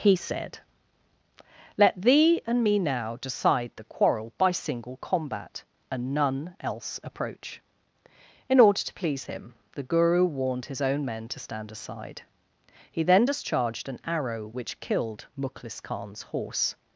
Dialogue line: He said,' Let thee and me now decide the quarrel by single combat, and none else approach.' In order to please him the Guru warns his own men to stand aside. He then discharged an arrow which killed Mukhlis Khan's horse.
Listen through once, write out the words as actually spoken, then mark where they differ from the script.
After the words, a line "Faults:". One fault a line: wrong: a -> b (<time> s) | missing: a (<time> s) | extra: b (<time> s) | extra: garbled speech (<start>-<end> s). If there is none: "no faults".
He said,' Let thee and me now decide the quarrel by single combat, and none else approach.' In order to please him the Guru warned his own men to stand aside. He then discharged an arrow which killed Mukhlis Khan's horse.
Faults:
wrong: warns -> warned (10.2 s)